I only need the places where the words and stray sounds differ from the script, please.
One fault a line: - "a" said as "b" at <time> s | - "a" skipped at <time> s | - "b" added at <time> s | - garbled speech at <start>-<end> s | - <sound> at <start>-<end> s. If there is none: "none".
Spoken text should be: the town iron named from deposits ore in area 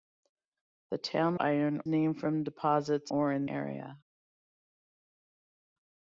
none